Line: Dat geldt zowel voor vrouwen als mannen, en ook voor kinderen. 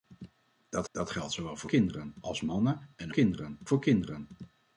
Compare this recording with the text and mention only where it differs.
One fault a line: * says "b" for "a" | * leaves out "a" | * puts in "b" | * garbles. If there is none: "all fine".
* puts in "dat"
* says "kinderen" for "vrouwen"
* says "kinderen" for "ook"